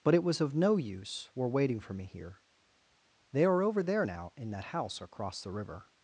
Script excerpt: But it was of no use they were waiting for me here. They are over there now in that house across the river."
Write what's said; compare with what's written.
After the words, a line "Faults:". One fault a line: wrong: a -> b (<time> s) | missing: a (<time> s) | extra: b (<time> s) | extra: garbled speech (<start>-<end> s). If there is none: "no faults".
But it was of no use were waiting for me here. They are over there now in that house across the river."
Faults:
missing: they (1.3 s)